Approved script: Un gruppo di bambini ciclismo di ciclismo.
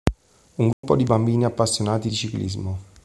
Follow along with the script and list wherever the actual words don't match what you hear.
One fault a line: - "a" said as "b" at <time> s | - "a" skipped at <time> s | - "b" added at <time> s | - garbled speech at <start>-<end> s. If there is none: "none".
- "ciclismo" said as "appassionati" at 1.4 s